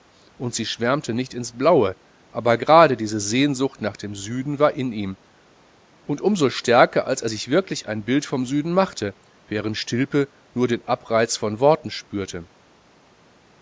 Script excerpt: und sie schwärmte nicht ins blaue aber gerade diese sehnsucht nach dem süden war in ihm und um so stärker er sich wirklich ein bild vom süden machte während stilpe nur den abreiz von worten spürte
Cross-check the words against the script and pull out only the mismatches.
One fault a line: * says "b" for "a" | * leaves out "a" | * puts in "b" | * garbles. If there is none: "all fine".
* puts in "als"